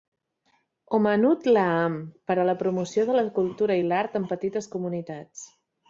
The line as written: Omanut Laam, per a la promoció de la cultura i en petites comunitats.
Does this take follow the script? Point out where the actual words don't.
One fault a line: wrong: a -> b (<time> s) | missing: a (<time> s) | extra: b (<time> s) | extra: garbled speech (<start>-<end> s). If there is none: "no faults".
extra: l'art (3.9 s)